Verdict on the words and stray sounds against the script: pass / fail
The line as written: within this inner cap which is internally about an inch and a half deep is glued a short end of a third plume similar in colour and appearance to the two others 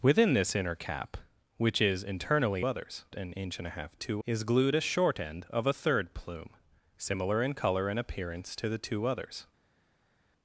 fail